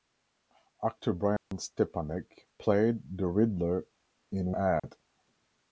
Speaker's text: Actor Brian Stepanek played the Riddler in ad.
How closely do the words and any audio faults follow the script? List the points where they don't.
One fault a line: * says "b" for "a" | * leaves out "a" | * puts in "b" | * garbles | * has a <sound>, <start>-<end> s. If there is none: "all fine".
* has a dropout, 1.4-1.5 s
* has a dropout, 4.8-4.8 s